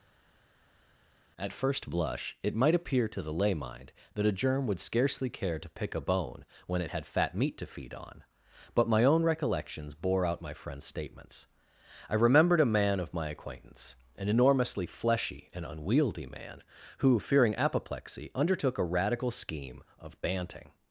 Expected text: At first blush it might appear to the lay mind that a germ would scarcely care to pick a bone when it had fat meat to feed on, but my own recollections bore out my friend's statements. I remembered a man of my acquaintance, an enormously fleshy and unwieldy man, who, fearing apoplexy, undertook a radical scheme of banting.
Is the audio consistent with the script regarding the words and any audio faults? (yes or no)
yes